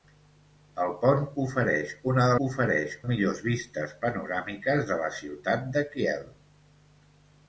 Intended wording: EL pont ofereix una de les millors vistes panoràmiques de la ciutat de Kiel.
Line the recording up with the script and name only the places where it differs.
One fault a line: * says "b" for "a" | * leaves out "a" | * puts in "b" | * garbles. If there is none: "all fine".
* says "ofereix" for "les"